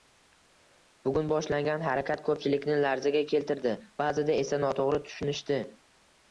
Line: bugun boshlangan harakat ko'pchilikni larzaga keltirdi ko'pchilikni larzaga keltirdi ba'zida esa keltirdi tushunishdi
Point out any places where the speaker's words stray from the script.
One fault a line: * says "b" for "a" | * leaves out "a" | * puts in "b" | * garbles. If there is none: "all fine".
* leaves out "ko'pchilikni larzaga keltirdi"
* says "noto'g'ri" for "keltirdi"